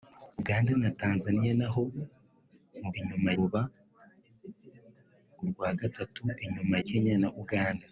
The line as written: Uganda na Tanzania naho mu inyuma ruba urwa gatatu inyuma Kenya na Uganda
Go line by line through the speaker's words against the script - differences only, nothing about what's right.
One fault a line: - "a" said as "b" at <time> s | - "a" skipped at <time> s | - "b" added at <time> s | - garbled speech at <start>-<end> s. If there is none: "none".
none